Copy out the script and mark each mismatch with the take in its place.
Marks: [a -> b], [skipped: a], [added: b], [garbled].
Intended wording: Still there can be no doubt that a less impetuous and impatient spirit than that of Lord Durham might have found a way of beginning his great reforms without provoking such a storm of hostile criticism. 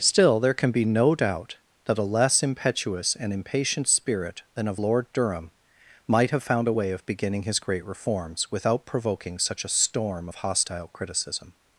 Still there can be no doubt that a less impetuous and impatient spirit than [skipped: that] of Lord Durham might have found a way of beginning his great reforms without provoking such a storm of hostile criticism.